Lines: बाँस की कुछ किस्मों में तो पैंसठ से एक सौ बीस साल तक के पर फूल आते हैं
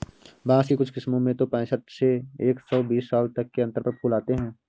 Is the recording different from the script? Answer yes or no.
yes